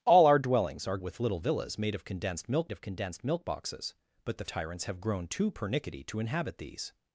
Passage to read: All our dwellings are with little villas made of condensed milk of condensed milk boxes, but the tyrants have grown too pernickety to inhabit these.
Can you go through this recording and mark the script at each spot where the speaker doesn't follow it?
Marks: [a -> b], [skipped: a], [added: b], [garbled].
All our dwellings are with little villas made of condensed milk of condensed milk boxes, but the tyrants have grown too pernickety to inhabit these.